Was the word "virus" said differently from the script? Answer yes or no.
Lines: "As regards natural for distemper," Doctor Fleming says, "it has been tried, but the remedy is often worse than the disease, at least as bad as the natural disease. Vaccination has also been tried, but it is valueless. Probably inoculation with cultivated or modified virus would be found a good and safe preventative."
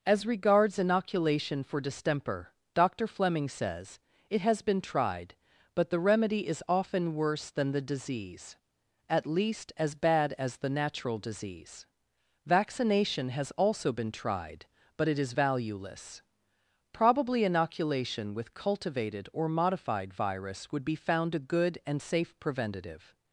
no